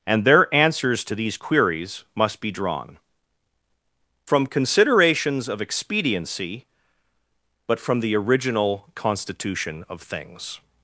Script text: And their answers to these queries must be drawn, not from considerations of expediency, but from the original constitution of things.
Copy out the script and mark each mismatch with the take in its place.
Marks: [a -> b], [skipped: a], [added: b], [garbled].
And their answers to these queries must be drawn, [skipped: not] from considerations of expediency, but from the original constitution of things.